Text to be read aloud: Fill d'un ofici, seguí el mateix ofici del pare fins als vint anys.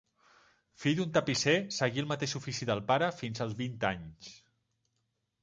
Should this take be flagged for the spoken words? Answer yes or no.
yes